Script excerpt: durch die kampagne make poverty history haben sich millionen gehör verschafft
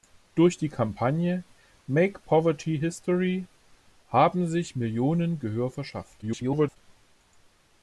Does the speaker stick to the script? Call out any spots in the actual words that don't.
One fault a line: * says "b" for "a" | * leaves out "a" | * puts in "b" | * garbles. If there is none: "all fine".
* garbles